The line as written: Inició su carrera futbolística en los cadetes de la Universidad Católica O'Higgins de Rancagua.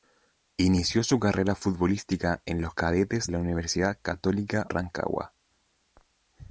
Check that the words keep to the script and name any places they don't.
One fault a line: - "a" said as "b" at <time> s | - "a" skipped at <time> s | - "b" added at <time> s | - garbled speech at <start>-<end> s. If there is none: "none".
- "de" skipped at 3.3 s
- "O'Higgins de" skipped at 4.7 s